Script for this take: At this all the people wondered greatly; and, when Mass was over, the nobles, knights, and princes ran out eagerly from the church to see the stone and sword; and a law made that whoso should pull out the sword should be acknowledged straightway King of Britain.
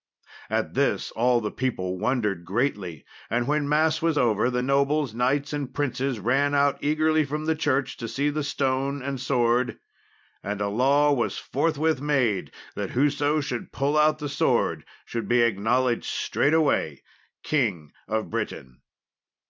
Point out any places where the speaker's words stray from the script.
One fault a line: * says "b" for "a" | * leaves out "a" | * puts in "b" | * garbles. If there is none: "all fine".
* puts in "was forthwith"